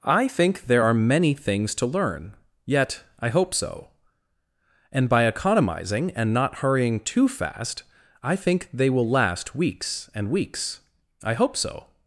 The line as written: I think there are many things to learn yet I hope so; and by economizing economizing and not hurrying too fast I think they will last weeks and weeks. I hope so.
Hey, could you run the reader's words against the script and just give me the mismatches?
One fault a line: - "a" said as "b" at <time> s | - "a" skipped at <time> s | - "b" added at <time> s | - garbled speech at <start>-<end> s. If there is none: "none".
- "economizing" skipped at 6.1 s